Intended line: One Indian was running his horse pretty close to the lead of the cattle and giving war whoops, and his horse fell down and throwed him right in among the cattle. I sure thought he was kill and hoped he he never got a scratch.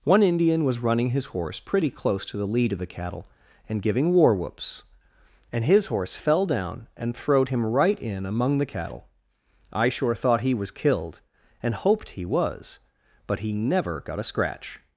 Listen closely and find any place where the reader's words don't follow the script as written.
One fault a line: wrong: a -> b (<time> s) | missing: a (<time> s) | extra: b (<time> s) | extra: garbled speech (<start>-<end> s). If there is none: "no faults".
wrong: kill -> killed (10.7 s)
extra: was but (12.2 s)